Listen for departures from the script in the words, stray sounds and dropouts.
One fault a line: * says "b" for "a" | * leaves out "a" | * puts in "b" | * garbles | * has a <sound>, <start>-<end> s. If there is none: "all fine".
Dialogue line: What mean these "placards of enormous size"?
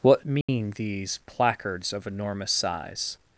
* has a dropout, 0.4-0.5 s